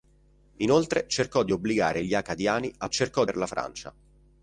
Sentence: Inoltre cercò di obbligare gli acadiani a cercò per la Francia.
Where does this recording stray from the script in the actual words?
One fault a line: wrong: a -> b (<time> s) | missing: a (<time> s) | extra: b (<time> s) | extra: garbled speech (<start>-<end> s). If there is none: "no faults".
no faults